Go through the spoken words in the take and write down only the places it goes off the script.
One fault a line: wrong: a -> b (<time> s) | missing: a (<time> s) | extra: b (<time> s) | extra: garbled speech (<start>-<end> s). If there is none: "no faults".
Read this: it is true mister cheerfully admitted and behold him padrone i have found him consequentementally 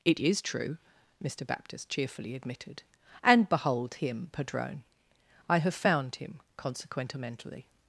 extra: baptist (1.4 s)